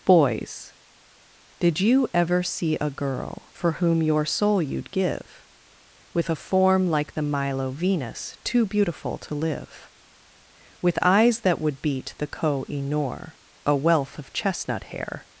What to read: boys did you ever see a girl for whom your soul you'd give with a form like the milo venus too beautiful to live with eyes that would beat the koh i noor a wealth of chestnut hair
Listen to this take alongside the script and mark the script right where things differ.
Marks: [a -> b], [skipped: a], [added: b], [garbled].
boys did you ever see a girl for whom your soul you'd give with a form like the milo venus too beautiful to live with eyes that would beat the koh i noor a wealth of chestnut hair